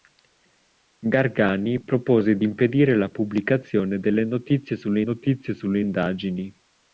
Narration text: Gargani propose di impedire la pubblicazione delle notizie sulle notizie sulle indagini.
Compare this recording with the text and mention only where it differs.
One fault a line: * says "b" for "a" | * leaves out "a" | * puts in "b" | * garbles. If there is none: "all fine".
all fine